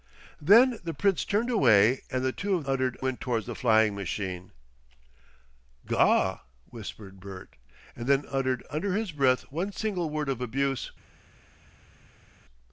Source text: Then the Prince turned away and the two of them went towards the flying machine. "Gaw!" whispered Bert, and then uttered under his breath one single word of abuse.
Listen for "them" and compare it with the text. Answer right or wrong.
wrong